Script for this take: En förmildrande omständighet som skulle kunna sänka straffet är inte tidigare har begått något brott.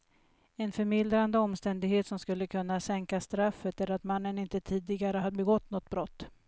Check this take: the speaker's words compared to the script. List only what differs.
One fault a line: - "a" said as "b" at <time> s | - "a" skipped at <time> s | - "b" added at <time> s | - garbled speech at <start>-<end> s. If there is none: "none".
- "att mannen" added at 3.9 s